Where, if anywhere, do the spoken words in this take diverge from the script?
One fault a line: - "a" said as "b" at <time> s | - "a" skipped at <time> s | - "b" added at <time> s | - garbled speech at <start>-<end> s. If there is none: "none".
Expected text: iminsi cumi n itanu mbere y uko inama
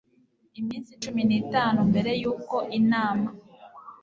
none